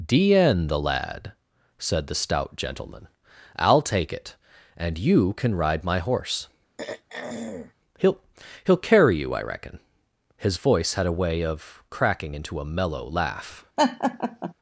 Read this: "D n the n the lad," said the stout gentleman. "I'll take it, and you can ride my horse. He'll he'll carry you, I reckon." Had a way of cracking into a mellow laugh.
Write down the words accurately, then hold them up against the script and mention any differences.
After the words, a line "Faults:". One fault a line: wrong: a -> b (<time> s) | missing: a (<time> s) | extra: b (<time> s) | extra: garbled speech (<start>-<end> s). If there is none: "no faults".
"D n the lad," said the stout gentleman. "I'll take it, and you can ride my horse. He'll he'll carry you, I reckon." His voice had a way of cracking into a mellow laugh.
Faults:
missing: n the (0.8 s)
extra: His voice (10.4 s)